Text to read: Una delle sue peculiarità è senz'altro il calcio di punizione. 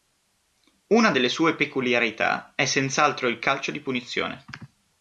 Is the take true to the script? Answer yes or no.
yes